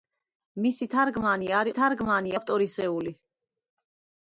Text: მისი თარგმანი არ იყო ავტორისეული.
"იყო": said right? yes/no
no